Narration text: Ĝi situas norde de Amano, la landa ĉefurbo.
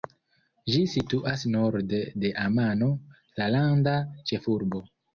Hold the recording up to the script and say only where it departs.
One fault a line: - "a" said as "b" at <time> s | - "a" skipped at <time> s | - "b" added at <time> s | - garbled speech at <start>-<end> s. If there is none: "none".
none